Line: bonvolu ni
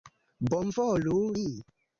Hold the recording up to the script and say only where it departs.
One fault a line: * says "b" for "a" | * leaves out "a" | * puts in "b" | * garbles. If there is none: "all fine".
all fine